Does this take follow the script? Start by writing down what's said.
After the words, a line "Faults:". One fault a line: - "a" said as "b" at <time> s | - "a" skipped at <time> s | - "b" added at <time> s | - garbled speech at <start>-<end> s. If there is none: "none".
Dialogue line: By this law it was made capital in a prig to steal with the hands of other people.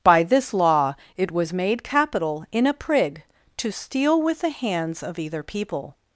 By this law it was made capital in a prig to steal with the hands of either people.
Faults:
- "other" said as "either" at 5.2 s